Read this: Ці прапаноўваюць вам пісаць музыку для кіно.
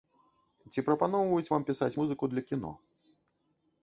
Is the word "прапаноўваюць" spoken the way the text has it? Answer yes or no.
yes